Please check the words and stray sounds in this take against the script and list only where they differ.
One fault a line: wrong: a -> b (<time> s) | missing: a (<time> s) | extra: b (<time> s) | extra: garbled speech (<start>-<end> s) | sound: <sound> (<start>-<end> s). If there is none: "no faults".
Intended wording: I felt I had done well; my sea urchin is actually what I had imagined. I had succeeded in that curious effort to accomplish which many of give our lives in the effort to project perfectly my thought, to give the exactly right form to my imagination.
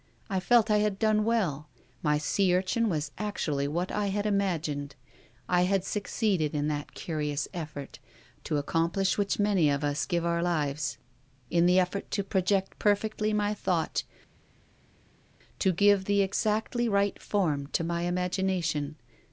wrong: is -> was (2.9 s)
extra: us (9.8 s)